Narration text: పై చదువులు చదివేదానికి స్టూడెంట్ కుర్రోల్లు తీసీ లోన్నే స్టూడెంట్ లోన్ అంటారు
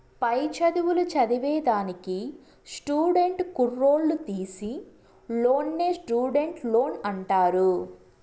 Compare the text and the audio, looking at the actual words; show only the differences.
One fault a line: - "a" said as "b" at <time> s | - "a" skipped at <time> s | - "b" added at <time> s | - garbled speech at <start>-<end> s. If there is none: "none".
none